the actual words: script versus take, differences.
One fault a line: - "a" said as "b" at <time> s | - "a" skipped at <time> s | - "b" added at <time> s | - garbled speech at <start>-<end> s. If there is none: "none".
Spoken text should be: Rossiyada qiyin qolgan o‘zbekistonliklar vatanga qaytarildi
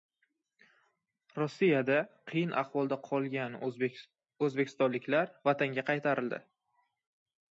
- "ahvolda" added at 2.6 s